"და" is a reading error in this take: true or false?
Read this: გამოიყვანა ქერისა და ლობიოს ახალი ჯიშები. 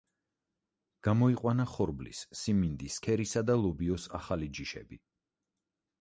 false